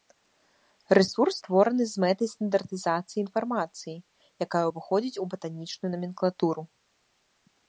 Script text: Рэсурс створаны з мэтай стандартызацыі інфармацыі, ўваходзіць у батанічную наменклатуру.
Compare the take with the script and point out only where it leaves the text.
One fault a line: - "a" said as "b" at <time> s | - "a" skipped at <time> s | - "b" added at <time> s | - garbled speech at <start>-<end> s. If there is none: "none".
- "якая" added at 4.5 s